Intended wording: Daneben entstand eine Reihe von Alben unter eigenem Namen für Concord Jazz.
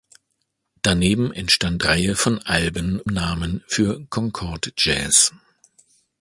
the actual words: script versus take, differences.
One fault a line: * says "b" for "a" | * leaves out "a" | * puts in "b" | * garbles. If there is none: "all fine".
* leaves out "eine"
* leaves out "unter eigenem"